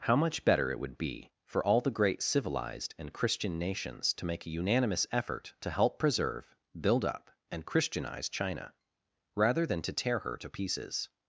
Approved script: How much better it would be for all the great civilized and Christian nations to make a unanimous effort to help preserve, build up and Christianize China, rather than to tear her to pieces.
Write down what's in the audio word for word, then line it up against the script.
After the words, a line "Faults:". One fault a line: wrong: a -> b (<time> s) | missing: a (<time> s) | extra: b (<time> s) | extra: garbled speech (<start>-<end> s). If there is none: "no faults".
How much better it would be for all the great civilized and Christian nations to make a unanimous effort to help preserve, build up and Christianize China, rather than to tear her to pieces.
Faults:
no faults